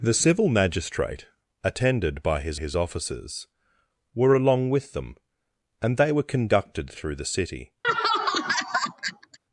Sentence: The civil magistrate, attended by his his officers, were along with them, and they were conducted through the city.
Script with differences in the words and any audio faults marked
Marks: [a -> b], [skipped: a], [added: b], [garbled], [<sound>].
The civil magistrate, attended by his his officers, were along with them, and they were conducted through the city. [laugh]